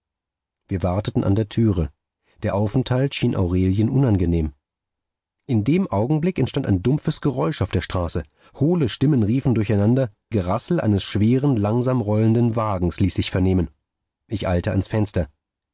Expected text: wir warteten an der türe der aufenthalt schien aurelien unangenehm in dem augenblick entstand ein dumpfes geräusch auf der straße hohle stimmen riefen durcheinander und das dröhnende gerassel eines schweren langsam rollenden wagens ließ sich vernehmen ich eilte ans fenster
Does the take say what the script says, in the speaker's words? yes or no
no